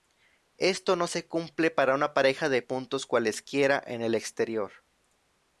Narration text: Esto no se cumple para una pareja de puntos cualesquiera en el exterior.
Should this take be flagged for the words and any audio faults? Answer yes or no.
no